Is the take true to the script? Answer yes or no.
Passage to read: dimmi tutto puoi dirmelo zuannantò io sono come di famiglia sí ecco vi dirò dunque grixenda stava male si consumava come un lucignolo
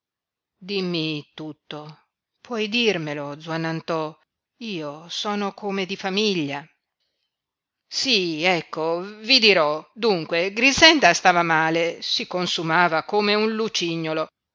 yes